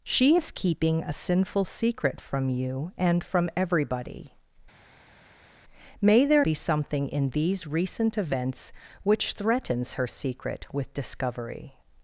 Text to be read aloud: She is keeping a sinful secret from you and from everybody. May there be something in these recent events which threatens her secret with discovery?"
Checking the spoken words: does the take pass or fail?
pass